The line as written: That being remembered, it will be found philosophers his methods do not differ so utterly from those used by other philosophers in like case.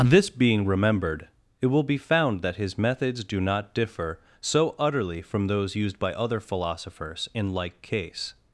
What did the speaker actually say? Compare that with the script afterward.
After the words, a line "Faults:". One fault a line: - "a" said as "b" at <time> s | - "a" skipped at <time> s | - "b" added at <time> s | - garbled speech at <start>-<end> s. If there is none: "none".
This being remembered, it will be found that his methods do not differ so utterly from those used by other philosophers in like case.
Faults:
- "That" said as "This" at 0.0 s
- "philosophers" said as "that" at 2.4 s